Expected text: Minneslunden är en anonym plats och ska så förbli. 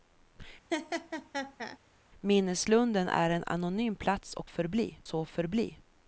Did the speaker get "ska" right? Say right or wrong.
wrong